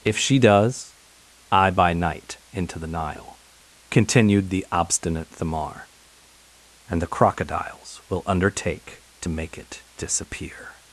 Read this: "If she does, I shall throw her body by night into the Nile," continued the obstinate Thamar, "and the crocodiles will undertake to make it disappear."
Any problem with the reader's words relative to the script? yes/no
yes